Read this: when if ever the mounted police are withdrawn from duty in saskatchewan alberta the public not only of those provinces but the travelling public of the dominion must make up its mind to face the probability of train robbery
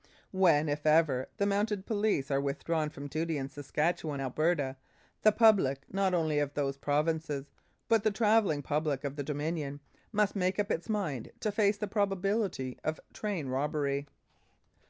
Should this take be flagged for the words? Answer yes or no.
no